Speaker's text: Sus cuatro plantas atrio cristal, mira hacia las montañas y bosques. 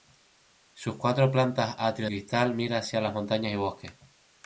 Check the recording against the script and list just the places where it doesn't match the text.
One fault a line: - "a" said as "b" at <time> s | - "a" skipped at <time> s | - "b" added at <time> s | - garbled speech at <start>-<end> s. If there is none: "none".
none